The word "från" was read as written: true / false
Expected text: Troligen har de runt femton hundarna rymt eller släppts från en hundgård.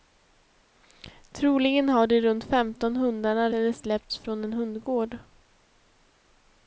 true